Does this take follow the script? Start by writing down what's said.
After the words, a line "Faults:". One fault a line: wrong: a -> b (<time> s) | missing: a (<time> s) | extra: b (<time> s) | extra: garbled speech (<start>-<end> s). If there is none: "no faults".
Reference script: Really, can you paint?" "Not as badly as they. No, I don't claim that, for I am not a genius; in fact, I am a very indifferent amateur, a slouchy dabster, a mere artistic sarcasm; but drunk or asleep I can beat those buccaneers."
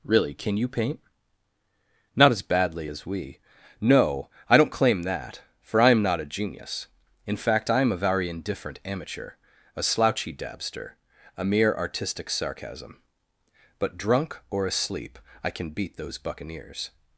Really, can you paint?" "Not as badly as we. No, I don't claim that, for I am not a genius; in fact, I am a very indifferent amateur, a slouchy dabster, a mere artistic sarcasm; but drunk or asleep I can beat those buccaneers."
Faults:
wrong: they -> we (3.0 s)